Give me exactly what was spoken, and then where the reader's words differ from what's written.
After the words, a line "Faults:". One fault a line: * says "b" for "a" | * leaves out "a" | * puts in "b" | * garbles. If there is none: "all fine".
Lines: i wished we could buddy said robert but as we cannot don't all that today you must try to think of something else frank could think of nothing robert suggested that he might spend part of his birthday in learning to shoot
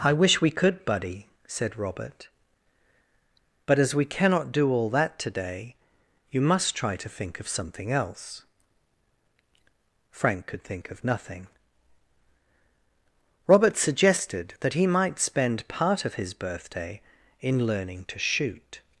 i wish we could buddy said robert but as we cannot do all that today you must try to think of something else frank could think of nothing robert suggested that he might spend part of his birthday in learning to shoot
Faults:
* says "wish" for "wished"
* says "do" for "don't"